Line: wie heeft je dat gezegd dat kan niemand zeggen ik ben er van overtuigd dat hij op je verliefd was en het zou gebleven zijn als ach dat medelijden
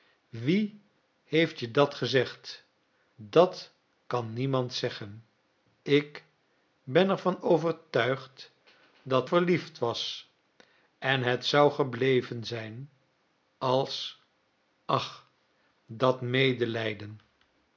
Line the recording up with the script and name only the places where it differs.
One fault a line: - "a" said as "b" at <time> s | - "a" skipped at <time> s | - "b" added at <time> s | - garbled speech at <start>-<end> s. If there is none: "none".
- "hij op je" skipped at 9.3 s